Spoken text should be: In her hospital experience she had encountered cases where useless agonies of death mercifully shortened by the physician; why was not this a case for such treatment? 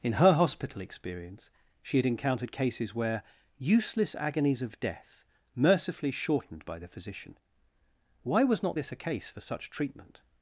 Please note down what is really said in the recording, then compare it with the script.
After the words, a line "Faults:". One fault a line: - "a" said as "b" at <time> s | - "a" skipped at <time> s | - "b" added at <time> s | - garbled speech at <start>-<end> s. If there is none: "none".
In her hospital experience she had encountered cases where useless agonies of death mercifully shortened by the physician; why was not this a case for such treatment?
Faults:
none